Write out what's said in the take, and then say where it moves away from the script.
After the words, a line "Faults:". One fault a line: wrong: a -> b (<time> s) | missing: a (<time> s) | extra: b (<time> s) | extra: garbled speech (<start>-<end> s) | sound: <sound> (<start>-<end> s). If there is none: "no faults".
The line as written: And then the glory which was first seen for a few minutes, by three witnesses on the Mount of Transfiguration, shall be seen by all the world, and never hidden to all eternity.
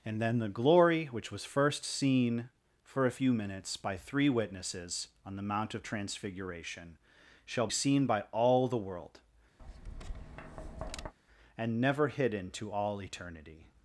And then the glory which was first seen for a few minutes, by three witnesses on the Mount of Transfiguration, shall seen by all the world, and never hidden to all eternity.
Faults:
missing: be (7.7 s)
sound: tap (9.6-11.1 s)